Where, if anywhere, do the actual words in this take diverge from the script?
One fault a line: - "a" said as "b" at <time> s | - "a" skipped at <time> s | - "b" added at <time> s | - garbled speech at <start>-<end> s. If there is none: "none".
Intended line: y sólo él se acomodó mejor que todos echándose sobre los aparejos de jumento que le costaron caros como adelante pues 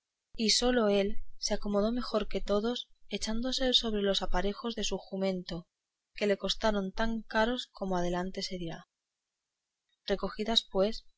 - "su" added at 4.8 s
- "tan" added at 6.9 s
- "se dirá recogidas" added at 8.4 s